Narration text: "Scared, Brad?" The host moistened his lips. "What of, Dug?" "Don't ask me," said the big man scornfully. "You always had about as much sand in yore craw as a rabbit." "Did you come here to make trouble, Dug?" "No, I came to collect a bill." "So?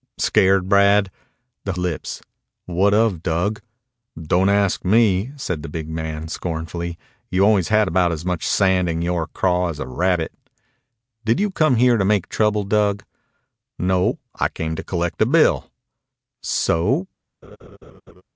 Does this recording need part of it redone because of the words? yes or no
yes